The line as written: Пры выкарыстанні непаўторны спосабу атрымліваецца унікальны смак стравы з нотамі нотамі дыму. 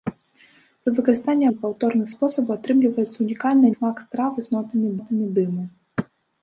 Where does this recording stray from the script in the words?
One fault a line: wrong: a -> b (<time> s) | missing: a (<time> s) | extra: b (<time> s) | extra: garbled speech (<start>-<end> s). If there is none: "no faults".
no faults